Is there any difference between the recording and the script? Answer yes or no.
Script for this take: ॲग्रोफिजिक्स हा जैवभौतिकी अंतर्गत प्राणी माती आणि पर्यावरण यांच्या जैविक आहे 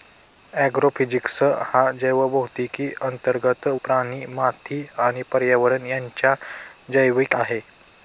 no